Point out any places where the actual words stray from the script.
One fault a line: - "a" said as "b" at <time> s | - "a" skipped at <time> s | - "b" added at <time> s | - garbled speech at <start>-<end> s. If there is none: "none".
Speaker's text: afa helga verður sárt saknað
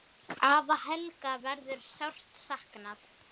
none